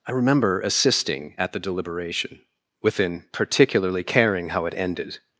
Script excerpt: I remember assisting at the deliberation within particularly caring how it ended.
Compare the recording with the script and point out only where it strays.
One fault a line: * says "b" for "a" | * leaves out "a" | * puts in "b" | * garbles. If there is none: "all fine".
all fine